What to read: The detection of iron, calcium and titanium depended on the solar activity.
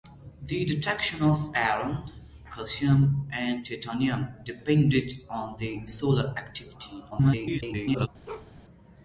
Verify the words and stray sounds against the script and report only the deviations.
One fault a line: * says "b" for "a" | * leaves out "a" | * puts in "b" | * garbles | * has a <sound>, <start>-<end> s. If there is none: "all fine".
* garbles
* has a bark, 8.3-8.5 s